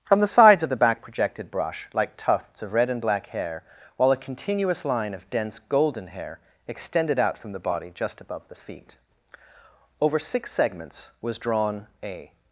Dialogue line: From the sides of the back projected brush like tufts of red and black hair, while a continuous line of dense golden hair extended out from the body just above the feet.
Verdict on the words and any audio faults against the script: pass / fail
fail